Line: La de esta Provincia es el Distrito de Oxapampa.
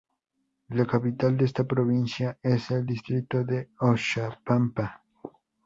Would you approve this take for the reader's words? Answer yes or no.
no